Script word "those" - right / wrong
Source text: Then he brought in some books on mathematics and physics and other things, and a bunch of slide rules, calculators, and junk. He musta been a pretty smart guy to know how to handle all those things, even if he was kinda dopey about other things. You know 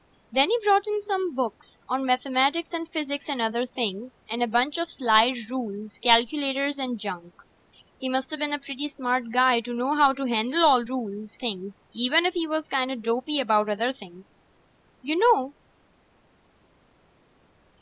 wrong